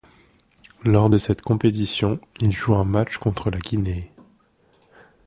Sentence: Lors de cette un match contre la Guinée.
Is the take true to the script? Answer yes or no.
no